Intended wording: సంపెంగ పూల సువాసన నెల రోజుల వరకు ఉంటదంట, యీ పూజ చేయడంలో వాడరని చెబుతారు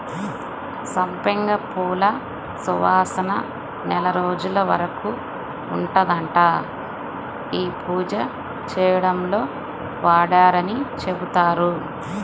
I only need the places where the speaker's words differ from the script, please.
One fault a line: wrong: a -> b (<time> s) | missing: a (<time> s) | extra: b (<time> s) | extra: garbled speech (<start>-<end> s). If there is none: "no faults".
no faults